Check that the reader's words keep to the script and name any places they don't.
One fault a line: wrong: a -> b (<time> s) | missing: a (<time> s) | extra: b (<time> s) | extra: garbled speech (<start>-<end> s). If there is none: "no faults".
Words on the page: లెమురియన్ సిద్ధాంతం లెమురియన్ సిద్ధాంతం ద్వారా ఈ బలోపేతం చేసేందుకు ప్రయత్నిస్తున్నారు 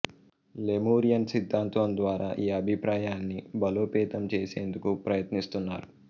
missing: లెమురియన్ సిద్ధాంతం (1.9 s)
extra: అభిప్రాయాన్ని (2.6 s)